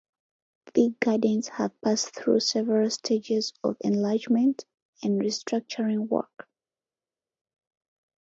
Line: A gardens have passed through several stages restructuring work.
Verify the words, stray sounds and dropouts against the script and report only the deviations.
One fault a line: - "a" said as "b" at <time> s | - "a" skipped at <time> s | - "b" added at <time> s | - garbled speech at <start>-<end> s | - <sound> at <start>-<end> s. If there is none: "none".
- "A" said as "The" at 0.7 s
- "of enlargement and" added at 3.6 s